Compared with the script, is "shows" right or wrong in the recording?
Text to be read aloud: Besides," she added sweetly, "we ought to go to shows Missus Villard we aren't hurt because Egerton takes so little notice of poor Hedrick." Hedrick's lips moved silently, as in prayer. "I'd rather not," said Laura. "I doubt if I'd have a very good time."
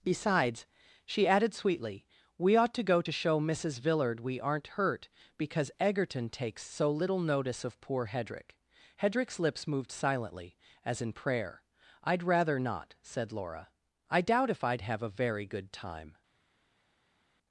wrong